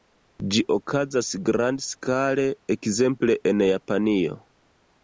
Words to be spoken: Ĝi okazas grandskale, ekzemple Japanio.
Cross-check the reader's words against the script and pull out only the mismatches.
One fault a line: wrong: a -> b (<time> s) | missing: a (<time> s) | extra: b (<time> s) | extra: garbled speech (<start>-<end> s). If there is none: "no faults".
extra: en (3.5 s)